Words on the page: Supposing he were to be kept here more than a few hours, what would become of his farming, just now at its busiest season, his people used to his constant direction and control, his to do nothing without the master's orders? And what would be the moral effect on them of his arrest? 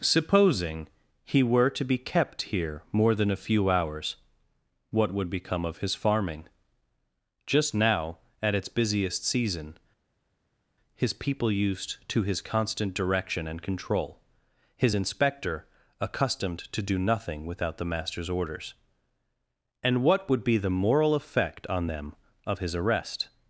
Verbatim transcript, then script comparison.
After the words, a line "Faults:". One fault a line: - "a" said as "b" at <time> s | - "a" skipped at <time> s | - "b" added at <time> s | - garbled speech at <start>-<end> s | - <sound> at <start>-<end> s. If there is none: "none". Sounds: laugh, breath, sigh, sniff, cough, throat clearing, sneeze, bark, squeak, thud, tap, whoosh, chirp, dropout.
Supposing he were to be kept here more than a few hours, what would become of his farming, just now at its busiest season, his people used to his constant direction and control, his inspector accustomed to do nothing without the master's orders? And what would be the moral effect on them of his arrest?
Faults:
- "inspector accustomed" added at 14.9 s